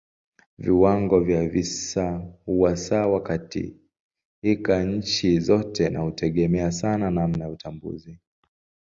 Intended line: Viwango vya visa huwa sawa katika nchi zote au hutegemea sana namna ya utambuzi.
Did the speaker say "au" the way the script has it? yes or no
no